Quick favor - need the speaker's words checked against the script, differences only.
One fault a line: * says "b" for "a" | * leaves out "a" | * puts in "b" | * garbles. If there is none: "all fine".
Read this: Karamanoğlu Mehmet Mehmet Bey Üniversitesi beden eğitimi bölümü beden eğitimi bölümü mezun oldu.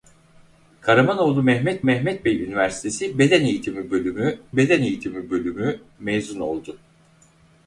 all fine